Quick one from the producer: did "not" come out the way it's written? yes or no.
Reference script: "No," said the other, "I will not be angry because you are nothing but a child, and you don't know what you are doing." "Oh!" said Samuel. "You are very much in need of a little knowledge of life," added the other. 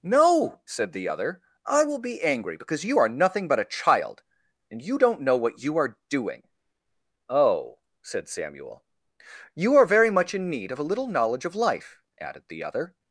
no